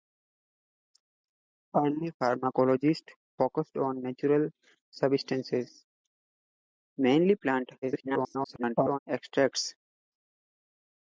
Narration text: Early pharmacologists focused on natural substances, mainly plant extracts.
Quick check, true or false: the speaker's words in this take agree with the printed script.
false